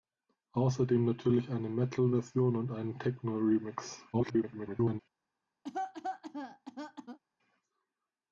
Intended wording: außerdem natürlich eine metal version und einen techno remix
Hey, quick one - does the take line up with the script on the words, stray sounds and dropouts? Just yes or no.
no